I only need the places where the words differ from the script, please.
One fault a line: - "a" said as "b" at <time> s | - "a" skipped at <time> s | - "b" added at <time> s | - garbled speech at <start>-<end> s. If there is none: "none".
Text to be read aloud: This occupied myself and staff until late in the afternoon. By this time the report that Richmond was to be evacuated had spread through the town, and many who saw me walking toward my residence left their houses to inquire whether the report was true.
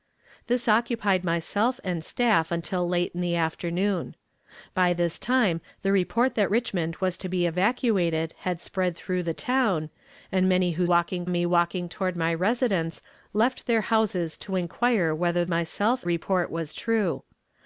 - "saw" said as "walking" at 10.8 s
- "the" said as "myself" at 15.5 s